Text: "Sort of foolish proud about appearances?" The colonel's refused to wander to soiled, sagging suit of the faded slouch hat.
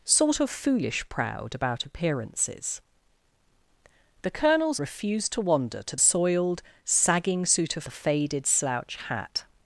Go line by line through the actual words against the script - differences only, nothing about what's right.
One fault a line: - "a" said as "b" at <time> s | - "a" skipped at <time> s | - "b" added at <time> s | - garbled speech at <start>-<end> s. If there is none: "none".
none